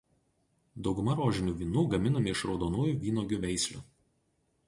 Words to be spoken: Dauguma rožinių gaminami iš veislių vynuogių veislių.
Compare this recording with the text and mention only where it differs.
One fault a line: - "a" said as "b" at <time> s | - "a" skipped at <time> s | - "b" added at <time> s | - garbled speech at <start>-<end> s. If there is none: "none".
- "vynų" added at 1.6 s
- "veislių" said as "raudonųjų" at 2.5 s